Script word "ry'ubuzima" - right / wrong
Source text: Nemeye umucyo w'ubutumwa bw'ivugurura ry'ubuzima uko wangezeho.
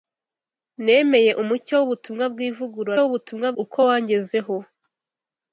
wrong